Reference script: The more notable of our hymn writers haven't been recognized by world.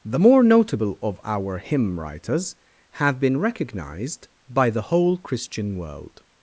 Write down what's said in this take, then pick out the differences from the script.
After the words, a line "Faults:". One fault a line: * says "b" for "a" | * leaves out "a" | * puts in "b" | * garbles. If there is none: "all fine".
The more notable of our hymn writers have been recognized by the whole Christian world.
Faults:
* says "have" for "haven't"
* puts in "the whole Christian"